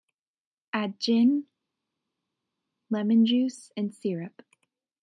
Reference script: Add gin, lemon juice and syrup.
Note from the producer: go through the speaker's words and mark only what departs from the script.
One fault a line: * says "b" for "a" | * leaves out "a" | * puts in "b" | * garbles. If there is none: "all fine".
all fine